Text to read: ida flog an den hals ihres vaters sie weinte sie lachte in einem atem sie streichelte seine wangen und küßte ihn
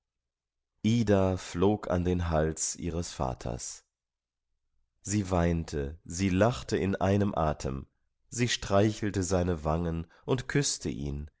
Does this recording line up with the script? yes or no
yes